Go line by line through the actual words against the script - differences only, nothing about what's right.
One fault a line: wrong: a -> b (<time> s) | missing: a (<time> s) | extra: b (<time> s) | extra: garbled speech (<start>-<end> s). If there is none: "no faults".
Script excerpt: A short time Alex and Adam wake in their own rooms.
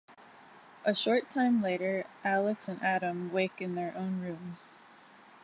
extra: later (1.6 s)